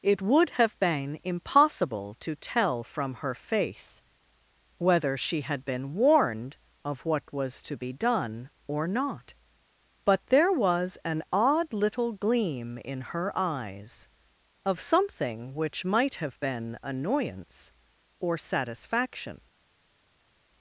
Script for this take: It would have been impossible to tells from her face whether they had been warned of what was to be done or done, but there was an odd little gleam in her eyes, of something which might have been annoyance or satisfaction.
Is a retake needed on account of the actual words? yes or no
yes